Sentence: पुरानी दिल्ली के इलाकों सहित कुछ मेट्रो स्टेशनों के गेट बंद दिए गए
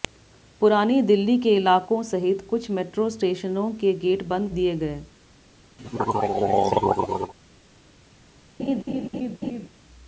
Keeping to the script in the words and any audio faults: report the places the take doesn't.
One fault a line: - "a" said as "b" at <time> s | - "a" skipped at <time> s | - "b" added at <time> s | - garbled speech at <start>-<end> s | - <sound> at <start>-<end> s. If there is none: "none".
- throat clearing at 5.8-7.3 s
- laugh at 8.6-9.7 s